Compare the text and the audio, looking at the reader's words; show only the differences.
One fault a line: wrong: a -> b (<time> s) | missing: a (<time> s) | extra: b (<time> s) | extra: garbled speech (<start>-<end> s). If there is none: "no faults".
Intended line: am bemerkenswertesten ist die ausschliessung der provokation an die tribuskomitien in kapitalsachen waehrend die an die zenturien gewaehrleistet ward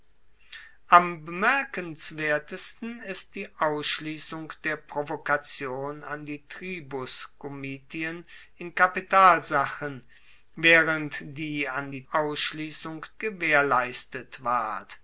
wrong: zenturien -> ausschliessung (12.1 s)